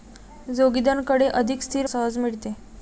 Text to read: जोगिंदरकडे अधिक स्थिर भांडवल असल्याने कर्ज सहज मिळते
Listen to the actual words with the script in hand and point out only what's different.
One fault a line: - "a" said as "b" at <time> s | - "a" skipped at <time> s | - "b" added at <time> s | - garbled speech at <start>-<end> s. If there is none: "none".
- "भांडवल असल्याने कर्ज" skipped at 1.9 s